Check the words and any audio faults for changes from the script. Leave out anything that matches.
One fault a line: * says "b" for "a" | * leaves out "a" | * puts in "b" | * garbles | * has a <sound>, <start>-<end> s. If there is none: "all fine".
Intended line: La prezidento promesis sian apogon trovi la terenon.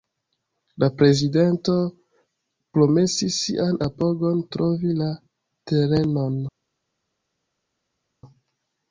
all fine